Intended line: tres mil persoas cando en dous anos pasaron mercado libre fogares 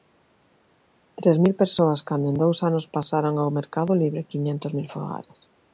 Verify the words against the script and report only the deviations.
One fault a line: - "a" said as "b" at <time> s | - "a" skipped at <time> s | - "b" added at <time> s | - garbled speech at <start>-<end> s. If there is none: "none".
- "ao" added at 3.4 s
- "quiñentos mil" added at 4.3 s